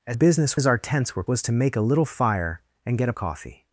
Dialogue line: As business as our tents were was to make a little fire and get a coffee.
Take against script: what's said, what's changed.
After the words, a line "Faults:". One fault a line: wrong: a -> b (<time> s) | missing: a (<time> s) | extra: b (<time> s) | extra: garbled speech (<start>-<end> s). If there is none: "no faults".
As business as our tents were was to make a little fire and get a coffee.
Faults:
no faults